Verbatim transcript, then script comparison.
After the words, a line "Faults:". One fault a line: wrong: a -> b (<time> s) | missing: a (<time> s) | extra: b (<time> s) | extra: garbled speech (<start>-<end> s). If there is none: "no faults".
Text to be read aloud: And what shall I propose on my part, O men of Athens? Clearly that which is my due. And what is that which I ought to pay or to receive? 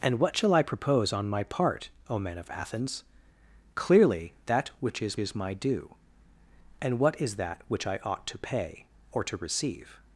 And what shall I propose on my part, O men of Athens? Clearly that which is is my due. And what is that which I ought to pay or to receive?
Faults:
extra: is (5.2 s)